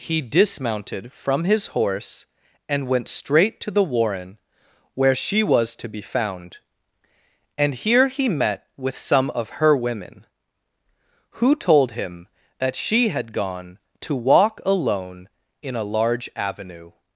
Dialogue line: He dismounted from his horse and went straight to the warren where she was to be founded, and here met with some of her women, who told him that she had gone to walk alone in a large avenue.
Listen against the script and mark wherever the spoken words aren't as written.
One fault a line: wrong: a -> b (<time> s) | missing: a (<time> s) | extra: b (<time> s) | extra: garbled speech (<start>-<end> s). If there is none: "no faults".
wrong: founded -> found (6.0 s)
extra: he (8.1 s)